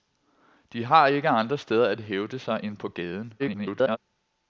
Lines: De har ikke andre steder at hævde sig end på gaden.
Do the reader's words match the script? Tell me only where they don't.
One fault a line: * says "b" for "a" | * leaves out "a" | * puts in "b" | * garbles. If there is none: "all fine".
* garbles